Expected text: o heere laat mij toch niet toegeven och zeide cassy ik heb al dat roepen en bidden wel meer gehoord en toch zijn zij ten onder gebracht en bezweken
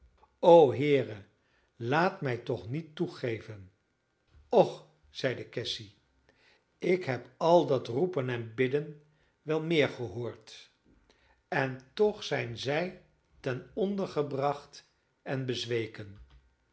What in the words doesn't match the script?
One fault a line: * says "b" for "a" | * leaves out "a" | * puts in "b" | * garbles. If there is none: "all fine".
all fine